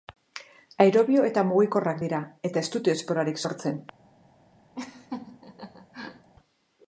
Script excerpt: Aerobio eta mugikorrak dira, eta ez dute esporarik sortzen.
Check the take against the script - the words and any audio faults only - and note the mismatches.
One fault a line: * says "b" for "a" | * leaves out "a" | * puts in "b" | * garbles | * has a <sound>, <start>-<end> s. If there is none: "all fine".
* has a laugh, 4.7-6.3 s